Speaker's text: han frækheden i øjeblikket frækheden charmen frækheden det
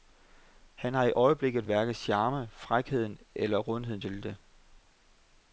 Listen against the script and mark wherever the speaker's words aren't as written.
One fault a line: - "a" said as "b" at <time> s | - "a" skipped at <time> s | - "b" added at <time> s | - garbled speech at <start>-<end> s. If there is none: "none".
- "frækheden" said as "har" at 0.9 s
- "frækheden" said as "hverken" at 1.6 s
- "eller rundheden til" added at 3.3 s